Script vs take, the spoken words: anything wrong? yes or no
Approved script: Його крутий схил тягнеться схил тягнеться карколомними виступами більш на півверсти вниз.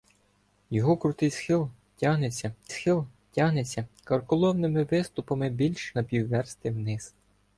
no